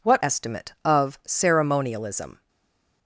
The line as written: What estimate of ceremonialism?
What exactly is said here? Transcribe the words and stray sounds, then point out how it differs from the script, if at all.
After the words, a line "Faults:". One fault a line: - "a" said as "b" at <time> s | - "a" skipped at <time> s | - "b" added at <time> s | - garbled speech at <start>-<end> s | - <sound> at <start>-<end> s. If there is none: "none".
What estimate of ceremonialism?
Faults:
none